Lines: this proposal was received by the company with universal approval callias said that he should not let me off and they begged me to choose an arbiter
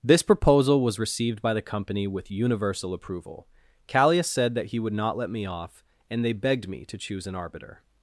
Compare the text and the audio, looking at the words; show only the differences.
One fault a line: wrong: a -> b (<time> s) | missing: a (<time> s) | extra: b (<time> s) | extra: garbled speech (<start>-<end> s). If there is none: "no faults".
wrong: should -> would (4.8 s)